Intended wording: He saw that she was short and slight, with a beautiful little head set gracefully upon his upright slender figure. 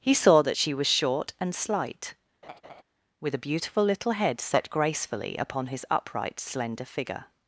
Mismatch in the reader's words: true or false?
false